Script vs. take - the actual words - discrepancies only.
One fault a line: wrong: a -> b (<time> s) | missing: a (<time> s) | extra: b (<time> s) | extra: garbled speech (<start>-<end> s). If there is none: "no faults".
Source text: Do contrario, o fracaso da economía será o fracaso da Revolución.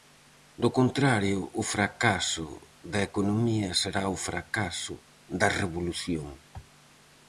no faults